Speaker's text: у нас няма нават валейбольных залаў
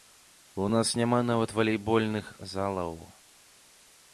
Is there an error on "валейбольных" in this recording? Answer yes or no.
no